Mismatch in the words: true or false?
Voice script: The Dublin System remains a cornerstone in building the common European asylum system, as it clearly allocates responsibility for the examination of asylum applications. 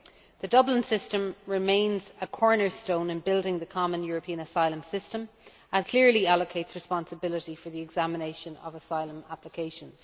true